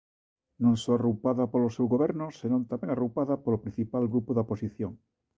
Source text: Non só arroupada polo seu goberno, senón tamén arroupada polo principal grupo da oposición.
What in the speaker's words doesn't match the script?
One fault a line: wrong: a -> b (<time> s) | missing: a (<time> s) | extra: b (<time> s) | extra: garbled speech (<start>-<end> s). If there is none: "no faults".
no faults